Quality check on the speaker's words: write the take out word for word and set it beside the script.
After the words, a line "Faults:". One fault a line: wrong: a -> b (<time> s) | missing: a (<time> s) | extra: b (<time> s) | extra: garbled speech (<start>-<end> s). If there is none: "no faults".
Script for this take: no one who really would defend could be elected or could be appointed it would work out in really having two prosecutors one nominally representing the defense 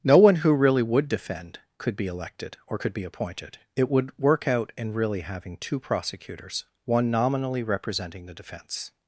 no one who really would defend could be elected or could be appointed it would work out in really having two prosecutors one nominally representing the defense
Faults:
no faults